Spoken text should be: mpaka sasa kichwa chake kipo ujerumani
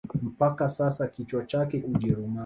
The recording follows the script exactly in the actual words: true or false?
false